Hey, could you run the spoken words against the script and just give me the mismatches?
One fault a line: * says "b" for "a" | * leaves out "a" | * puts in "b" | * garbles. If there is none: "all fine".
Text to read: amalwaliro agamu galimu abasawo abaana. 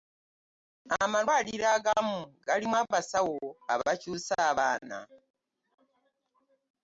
* puts in "abakyusa"